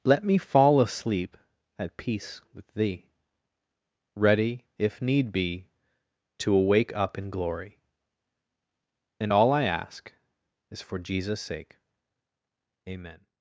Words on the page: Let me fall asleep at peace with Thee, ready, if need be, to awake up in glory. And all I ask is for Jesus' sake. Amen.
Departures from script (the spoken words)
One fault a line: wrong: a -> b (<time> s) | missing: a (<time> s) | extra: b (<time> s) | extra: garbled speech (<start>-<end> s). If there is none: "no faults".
no faults